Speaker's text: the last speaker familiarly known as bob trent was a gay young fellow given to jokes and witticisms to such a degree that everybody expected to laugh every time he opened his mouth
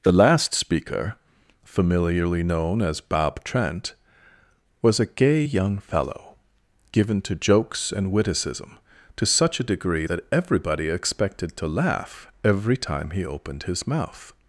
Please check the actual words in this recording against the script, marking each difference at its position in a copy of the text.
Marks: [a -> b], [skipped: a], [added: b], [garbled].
the last speaker familiarly known as bob trent was a gay young fellow given to jokes and [witticisms -> witticism] to such a degree that everybody expected to laugh every time he opened his mouth